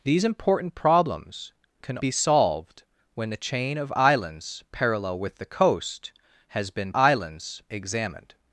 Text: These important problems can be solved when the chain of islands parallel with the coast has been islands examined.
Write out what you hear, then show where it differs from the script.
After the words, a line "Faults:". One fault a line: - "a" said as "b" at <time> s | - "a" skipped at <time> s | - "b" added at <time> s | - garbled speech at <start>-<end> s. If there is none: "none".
These important problems can be solved when the chain of islands parallel with the coast has been islands examined.
Faults:
none